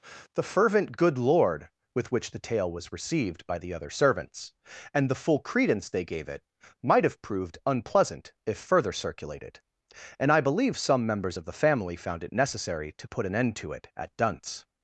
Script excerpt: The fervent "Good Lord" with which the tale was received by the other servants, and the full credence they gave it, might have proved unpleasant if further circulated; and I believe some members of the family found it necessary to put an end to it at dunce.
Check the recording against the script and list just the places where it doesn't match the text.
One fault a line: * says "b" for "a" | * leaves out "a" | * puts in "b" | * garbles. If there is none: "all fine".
all fine